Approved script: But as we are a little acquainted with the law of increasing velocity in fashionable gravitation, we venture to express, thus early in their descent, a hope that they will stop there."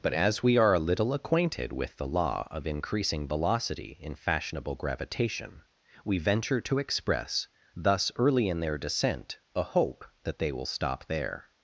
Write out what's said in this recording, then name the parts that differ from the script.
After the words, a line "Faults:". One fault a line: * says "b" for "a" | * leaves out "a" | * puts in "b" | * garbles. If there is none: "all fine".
But as we are a little acquainted with the law of increasing velocity in fashionable gravitation, we venture to express, thus early in their descent, a hope that they will stop there."
Faults:
all fine